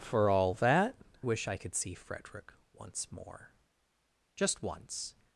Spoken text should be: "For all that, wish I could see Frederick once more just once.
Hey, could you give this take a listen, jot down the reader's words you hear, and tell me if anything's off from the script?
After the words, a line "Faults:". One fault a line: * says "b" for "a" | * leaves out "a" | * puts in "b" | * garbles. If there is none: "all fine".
"For all that, wish I could see Frederick once more just once.
Faults:
all fine